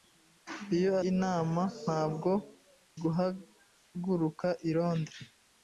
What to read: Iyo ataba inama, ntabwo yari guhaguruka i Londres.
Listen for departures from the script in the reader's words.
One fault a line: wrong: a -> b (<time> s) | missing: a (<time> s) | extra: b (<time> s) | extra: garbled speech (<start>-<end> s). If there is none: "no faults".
missing: ataba (0.9 s)
missing: yari (2.3 s)